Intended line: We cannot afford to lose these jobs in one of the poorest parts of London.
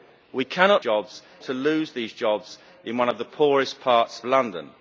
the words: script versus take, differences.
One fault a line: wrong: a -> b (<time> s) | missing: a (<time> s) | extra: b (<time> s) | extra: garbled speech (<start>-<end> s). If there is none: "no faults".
wrong: afford -> jobs (0.8 s)
missing: of (4.2 s)